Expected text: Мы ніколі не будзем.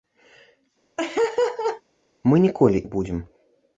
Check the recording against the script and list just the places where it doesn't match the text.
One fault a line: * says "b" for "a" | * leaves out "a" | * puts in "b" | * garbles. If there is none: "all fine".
all fine